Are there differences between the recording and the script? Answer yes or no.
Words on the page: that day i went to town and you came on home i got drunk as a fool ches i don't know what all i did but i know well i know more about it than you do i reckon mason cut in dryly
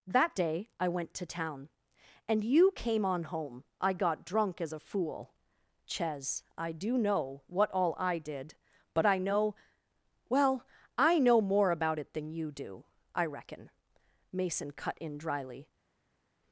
yes